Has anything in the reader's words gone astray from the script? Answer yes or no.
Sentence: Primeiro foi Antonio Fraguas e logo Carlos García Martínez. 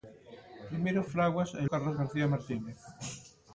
yes